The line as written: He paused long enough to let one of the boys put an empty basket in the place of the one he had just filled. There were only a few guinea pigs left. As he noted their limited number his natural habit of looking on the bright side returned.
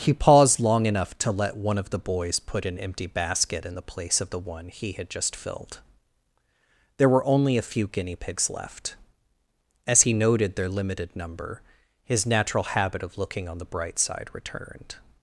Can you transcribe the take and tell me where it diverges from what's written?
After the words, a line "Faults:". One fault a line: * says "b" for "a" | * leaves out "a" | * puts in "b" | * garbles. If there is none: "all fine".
He paused long enough to let one of the boys put an empty basket in the place of the one he had just filled. There were only a few guinea pigs left. As he noted their limited number his natural habit of looking on the bright side returned.
Faults:
all fine